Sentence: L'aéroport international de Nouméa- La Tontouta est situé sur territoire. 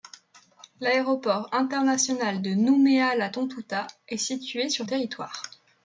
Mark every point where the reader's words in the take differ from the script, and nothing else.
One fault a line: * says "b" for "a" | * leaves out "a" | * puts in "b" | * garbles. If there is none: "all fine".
all fine